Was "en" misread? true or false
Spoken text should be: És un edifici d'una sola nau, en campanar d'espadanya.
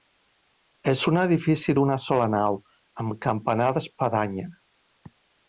true